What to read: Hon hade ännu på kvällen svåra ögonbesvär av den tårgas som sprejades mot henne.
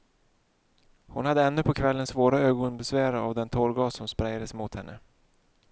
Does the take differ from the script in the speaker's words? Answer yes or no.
no